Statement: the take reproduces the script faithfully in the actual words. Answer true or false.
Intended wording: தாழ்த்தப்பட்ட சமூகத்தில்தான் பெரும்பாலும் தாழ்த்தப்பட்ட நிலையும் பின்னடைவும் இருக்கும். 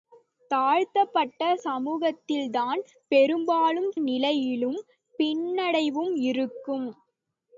false